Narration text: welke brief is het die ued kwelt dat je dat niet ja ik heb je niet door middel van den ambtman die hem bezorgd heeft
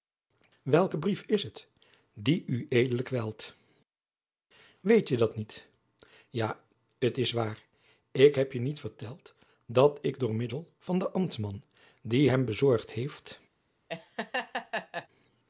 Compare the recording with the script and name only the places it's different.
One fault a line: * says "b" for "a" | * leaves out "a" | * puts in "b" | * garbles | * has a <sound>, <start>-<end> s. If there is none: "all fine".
* says "weet" for "dat"
* puts in "t is waar"
* puts in "verteld dat ik"
* has a laugh, 13.9-15.1 s